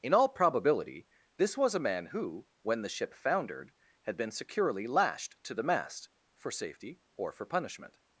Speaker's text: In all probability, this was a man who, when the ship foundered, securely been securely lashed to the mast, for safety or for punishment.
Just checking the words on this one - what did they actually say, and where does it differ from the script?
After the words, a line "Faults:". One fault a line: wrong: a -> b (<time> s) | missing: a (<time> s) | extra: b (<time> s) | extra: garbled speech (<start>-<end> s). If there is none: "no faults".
In all probability, this was a man who, when the ship foundered, had been securely lashed to the mast, for safety or for punishment.
Faults:
wrong: securely -> had (4.0 s)